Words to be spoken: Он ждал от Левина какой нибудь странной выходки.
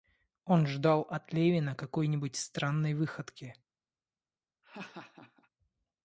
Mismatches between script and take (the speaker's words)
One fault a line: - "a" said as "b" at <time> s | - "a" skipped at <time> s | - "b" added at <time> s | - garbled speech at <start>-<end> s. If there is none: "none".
none